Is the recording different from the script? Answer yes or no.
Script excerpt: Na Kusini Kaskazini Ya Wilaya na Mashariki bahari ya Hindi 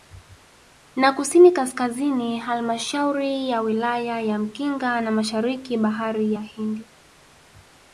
yes